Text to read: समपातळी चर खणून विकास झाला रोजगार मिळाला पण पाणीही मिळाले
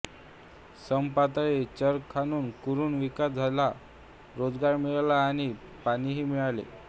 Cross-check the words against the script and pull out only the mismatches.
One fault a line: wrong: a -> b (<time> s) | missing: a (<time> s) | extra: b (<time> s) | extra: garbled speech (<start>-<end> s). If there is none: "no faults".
extra: कुरण (2.6 s)
wrong: पण -> आणि (5.2 s)